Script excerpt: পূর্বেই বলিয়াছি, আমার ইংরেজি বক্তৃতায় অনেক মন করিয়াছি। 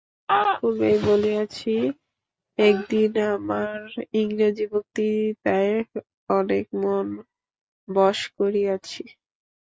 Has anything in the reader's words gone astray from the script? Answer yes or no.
yes